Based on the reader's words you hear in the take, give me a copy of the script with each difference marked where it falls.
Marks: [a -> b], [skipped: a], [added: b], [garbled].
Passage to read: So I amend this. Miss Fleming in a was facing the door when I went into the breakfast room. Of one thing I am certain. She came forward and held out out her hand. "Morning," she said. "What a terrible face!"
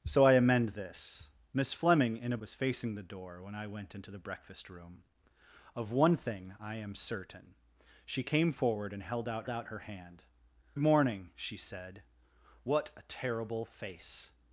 So I amend this. Miss Fleming in a was facing the door when I went into the breakfast room. Of one thing I am certain. She came forward and held out out her hand. "Morning," she said. "What a terrible face!"